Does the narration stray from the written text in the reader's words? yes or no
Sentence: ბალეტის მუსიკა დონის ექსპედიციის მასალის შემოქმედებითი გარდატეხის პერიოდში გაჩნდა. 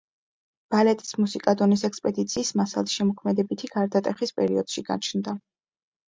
no